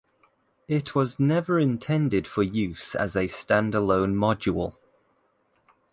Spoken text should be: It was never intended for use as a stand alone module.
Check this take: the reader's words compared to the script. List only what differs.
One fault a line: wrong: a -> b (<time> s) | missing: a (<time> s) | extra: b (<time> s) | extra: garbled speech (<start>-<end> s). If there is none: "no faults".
no faults